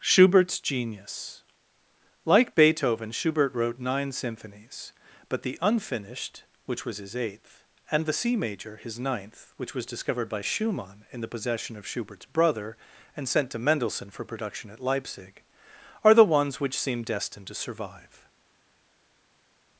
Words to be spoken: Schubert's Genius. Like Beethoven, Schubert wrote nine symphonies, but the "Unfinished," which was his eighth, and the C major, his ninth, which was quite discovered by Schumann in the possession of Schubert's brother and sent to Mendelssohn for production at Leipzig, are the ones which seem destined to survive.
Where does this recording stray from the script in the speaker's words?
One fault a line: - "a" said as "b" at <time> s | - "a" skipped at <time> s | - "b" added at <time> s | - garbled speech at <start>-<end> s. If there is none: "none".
- "quite" skipped at 9.8 s